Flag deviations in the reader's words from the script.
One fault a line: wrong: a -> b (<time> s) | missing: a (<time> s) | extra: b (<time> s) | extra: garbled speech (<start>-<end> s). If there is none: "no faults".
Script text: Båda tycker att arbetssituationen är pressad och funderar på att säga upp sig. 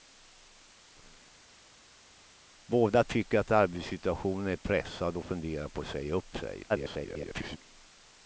extra: garbled speech (6.7-7.6 s)